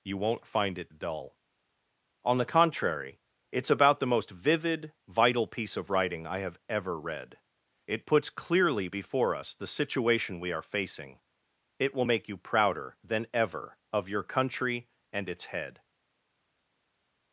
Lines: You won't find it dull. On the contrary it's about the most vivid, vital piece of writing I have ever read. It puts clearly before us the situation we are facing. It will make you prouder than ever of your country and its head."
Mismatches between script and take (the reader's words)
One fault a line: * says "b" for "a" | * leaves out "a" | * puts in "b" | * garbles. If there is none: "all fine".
all fine